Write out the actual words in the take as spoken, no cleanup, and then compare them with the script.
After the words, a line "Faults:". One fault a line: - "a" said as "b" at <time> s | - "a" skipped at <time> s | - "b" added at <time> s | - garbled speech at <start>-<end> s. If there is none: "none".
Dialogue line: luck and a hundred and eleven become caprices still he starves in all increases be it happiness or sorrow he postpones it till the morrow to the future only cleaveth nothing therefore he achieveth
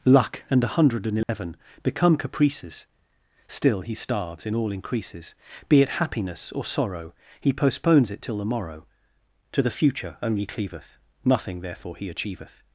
luck and a hundred and eleven become caprices still he starves in all increases be it happiness or sorrow he postpones it till the morrow to the future only cleaveth nothing therefore he achieveth
Faults:
none